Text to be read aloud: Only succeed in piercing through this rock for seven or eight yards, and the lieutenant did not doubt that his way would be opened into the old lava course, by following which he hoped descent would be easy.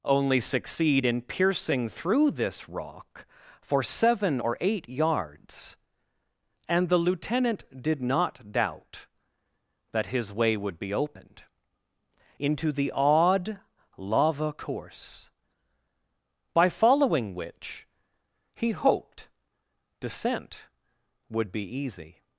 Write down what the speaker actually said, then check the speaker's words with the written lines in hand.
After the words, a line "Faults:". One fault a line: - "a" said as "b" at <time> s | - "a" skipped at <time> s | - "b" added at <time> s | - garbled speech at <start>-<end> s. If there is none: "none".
Only succeed in piercing through this rock for seven or eight yards, and the lieutenant did not doubt that his way would be opened into the odd lava course, by following which he hoped descent would be easy.
Faults:
- "old" said as "odd" at 12.9 s